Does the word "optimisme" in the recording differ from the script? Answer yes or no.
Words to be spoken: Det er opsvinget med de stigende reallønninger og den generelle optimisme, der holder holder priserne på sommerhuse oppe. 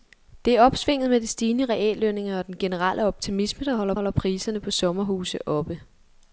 no